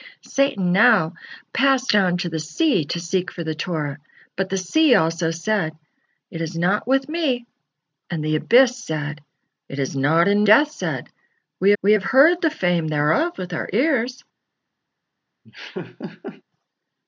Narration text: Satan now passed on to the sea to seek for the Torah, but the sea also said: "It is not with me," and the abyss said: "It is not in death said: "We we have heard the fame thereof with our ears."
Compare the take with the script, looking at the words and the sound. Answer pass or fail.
fail